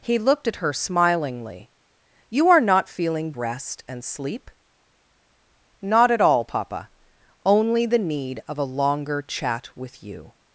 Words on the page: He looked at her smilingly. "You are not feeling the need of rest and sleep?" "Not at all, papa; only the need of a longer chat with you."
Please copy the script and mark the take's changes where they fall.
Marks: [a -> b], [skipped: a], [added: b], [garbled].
He looked at her smilingly. "You are not feeling [skipped: the need of] rest and sleep?" "Not at all, papa; only the need of a longer chat with you."